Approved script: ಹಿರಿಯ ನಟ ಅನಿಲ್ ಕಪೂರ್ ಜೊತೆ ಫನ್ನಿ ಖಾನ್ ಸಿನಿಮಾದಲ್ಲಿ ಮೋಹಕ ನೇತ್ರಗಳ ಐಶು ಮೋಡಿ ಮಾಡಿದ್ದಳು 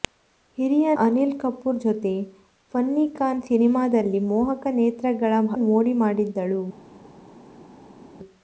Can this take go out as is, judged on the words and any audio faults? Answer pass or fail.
fail